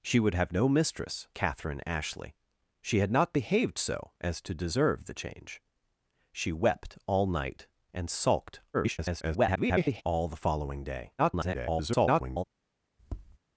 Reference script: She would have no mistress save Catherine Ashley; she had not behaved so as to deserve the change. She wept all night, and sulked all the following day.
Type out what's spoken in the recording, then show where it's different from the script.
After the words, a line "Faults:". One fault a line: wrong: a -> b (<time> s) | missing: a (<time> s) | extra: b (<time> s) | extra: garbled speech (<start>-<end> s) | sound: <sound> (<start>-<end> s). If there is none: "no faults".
She would have no mistress Catherine Ashley; she had not behaved so as to deserve the change. She wept all night, and sulked [garbled] all the following day. [garbled]
Faults:
missing: save (1.3 s)
extra: garbled speech (8.7-10.0 s)
extra: garbled speech (11.2-12.4 s)
sound: tap (13.0-13.4 s)